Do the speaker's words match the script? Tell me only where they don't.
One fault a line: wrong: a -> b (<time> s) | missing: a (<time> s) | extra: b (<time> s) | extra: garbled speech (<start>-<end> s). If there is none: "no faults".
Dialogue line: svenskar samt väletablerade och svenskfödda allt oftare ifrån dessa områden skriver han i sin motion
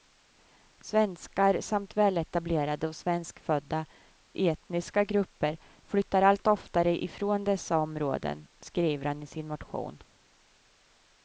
extra: etniska grupper flyttar (4.3 s)